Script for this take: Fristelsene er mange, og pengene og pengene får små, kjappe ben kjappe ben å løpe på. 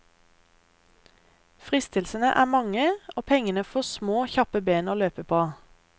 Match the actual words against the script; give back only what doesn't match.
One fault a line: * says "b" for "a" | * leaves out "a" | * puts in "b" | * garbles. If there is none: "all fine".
* leaves out "og pengene"
* leaves out "kjappe ben"